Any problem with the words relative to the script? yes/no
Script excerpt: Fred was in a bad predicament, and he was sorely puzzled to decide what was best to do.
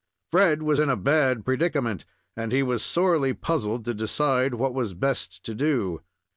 no